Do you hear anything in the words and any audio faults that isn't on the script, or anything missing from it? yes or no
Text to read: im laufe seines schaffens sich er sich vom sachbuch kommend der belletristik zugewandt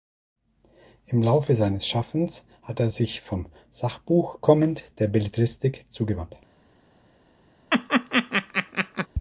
yes